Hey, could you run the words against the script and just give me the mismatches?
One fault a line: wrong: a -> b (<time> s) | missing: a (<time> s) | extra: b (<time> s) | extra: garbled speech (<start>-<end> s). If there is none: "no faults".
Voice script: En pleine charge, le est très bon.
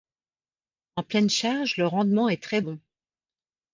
extra: rendement (1.9 s)